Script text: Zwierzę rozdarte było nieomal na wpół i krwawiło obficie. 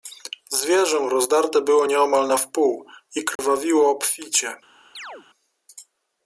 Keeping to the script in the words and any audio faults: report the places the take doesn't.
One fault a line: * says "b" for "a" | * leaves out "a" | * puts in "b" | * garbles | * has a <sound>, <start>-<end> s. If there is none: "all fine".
* has a dropout, 3.4-3.4 s
* has a chirp, 4.9-5.3 s